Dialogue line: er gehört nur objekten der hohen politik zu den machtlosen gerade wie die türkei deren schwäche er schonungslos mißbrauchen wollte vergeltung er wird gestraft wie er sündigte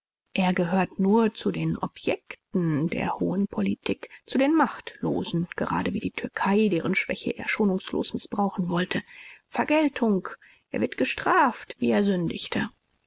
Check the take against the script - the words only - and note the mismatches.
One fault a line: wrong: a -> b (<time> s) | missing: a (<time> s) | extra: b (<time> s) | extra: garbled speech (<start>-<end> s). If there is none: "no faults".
extra: zu den (1.4 s)